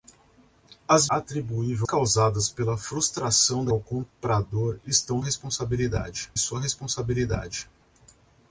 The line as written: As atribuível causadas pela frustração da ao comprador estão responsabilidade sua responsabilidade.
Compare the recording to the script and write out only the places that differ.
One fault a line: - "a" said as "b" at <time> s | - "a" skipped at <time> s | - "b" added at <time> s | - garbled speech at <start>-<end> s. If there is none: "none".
none